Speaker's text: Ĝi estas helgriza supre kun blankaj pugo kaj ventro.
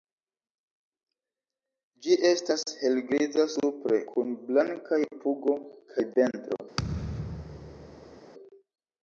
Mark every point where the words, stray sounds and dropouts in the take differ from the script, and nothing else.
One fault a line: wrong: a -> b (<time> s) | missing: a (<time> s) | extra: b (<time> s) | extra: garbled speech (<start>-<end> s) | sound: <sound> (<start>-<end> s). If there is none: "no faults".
sound: thud (6.8-8.2 s)